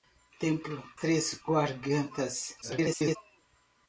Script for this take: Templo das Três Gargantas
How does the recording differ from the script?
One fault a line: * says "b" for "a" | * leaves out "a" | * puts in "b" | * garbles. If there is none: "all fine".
* leaves out "das"
* garbles